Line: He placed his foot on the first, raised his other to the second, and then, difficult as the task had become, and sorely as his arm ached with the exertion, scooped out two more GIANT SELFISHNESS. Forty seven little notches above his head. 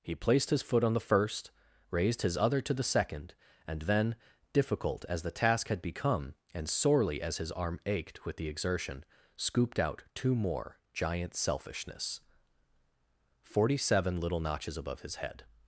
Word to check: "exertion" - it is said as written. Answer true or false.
true